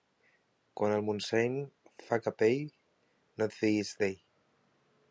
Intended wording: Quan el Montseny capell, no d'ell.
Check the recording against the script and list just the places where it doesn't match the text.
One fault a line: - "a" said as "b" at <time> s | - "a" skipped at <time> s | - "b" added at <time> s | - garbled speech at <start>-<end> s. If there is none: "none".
- "fa" added at 2.1 s
- "et fiïs" added at 3.5 s